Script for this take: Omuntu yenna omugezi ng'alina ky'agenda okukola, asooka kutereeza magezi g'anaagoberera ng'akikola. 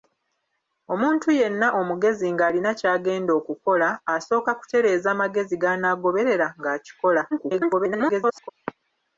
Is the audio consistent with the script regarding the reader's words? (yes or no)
no